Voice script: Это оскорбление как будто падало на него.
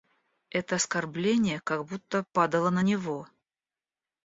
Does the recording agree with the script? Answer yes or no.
yes